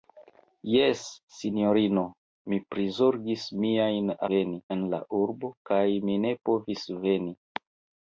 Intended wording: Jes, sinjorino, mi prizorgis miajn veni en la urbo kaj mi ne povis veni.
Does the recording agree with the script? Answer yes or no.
yes